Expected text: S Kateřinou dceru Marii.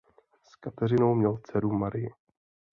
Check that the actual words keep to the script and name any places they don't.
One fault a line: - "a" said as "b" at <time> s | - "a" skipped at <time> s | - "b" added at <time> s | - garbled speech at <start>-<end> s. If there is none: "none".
- "měl" added at 1.1 s